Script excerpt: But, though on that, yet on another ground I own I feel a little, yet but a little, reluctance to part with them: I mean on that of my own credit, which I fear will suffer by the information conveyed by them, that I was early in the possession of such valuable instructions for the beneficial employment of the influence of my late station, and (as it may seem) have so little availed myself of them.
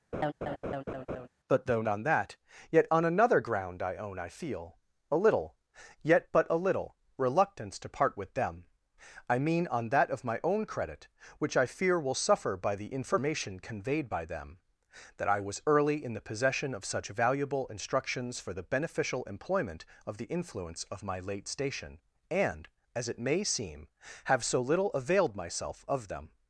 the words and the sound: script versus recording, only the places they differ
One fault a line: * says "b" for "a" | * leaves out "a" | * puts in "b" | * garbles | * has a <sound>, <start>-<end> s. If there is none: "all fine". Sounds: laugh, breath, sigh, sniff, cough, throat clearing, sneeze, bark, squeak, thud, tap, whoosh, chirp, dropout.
* has a laugh, 0.1-1.3 s